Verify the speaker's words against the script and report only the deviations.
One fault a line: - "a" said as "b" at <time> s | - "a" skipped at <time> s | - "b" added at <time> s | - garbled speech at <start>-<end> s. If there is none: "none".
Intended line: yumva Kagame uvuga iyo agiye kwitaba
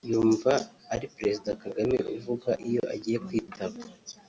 - "ari Perezida" added at 0.9 s